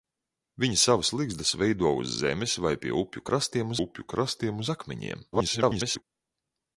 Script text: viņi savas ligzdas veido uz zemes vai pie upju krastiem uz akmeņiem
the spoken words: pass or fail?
fail